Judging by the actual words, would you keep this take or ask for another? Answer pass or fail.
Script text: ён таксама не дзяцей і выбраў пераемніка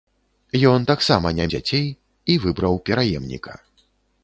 pass